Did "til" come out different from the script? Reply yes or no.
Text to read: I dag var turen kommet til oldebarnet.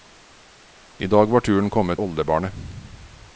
yes